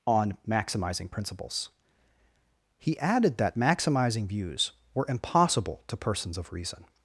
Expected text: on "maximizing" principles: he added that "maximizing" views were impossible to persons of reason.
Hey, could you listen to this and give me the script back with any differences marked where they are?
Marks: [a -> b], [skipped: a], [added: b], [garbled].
on "maximizing" principles: he added that "maximizing" views were impossible to persons of reason.